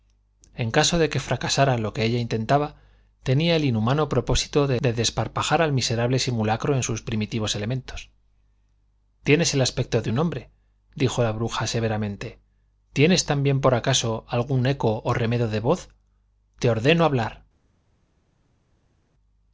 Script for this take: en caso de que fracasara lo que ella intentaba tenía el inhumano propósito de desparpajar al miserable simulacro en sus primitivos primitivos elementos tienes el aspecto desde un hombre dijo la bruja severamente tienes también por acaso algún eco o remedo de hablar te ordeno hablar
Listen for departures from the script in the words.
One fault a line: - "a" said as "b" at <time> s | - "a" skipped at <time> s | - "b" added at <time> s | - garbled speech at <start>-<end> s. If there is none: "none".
- "primitivos" skipped at 7.5 s
- "desde" said as "de" at 10.0 s
- "hablar" said as "voz" at 15.6 s